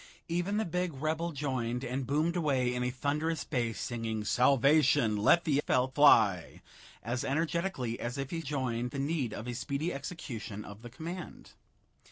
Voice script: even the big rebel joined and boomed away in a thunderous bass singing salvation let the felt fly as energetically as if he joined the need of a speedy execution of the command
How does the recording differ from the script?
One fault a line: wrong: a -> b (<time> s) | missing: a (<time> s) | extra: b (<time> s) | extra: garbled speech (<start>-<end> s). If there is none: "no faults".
no faults